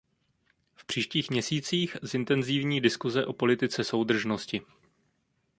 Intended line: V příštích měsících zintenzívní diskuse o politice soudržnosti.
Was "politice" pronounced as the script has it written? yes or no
yes